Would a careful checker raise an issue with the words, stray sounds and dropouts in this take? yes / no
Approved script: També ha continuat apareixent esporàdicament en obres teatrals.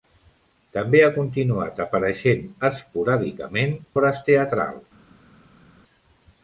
yes